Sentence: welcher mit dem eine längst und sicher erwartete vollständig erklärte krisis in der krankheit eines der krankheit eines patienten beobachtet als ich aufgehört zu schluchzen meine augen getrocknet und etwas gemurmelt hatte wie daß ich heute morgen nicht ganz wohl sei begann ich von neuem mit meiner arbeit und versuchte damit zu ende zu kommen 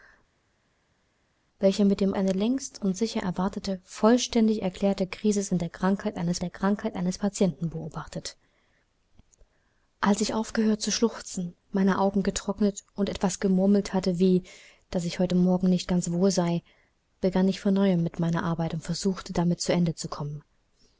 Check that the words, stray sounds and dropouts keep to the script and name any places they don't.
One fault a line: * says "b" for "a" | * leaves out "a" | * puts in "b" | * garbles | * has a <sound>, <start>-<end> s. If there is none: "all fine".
all fine